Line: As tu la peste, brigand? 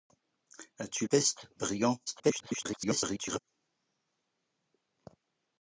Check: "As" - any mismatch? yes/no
no